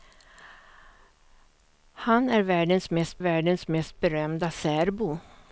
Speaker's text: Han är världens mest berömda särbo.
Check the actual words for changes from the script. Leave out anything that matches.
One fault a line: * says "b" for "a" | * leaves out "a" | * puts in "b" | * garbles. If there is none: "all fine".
* puts in "världens mest"